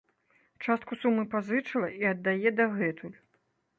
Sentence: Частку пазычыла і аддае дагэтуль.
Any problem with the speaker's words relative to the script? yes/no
yes